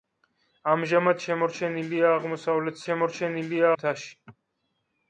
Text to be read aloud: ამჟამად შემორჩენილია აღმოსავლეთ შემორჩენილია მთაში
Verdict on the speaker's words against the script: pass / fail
pass